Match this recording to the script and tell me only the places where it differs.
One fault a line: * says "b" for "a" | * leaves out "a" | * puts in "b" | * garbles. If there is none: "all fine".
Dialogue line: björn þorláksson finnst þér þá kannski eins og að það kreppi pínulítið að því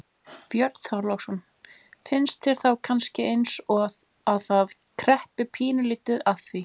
all fine